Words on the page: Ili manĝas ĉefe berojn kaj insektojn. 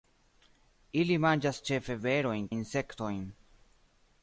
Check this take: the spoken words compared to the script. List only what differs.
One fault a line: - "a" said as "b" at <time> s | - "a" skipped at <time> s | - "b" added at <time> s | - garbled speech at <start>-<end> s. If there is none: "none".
- "kaj" skipped at 2.5 s